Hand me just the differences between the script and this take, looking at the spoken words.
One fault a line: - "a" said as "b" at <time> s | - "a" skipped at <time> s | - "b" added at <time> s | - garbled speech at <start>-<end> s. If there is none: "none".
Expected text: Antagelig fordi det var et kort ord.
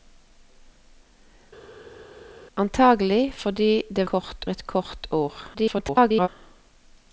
- "var" said as "kort" at 4.1 s
- garbled speech at 5.5-6.3 s